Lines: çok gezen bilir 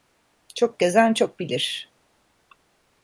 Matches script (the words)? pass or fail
fail